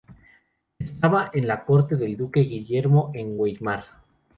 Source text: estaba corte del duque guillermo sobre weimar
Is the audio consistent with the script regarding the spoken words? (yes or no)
no